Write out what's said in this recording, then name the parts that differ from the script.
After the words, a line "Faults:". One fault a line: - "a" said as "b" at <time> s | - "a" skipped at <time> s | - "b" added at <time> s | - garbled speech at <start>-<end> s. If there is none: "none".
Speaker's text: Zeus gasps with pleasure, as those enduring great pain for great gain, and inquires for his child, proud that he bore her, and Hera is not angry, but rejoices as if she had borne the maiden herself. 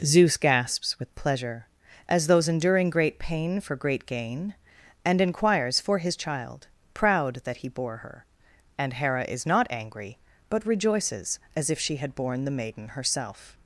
Zeus gasps with pleasure, as those enduring great pain for great gain, and inquires for his child, proud that he bore her, and Hera is not angry, but rejoices as if she had borne the maiden herself.
Faults:
none